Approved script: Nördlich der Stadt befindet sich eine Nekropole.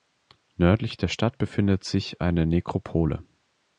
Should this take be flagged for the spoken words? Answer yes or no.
no